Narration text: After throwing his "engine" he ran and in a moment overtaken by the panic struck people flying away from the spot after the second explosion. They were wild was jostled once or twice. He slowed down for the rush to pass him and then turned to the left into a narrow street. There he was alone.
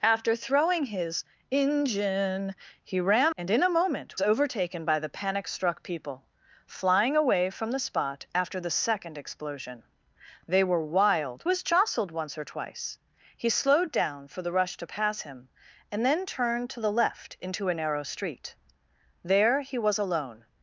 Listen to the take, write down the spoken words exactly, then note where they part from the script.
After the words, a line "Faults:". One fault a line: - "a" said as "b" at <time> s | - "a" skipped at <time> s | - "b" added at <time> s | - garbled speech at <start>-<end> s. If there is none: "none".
After throwing his "engine" he ran and in a moment overtaken by the panic struck people flying away from the spot after the second explosion. They were wild was jostled once or twice. He slowed down for the rush to pass him and then turned to the left into a narrow street. There he was alone.
Faults:
none